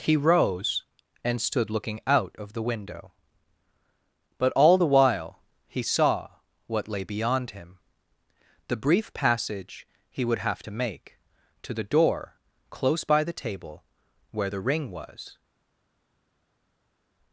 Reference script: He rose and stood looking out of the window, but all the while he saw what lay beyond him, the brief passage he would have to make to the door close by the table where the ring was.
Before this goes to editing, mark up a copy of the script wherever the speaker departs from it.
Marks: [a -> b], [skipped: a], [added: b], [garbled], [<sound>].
He rose and stood looking out of the window, but all the while he saw what lay beyond him, the brief passage he would have to make to the door close by the table where the ring was.